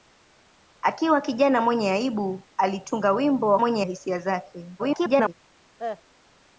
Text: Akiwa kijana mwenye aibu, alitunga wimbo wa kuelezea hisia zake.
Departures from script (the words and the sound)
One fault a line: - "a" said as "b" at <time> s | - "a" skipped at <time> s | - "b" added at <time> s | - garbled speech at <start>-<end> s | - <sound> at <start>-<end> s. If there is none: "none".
- "kuelezea" said as "mwenye" at 3.6 s
- garbled speech at 4.8-5.3 s
- cough at 5.8-6.0 s